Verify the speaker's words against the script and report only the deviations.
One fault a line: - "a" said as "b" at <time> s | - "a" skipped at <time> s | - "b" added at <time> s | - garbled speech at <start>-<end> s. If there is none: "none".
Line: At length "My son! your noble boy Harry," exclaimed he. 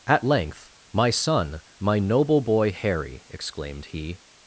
- "your" said as "my" at 1.8 s